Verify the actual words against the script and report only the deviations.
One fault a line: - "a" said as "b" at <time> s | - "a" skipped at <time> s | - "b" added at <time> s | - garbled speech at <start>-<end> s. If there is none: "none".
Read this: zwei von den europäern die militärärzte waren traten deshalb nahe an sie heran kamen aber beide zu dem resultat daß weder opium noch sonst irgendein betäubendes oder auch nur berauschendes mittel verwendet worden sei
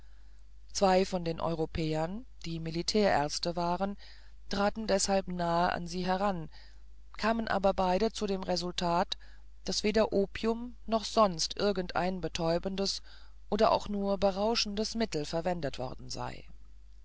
none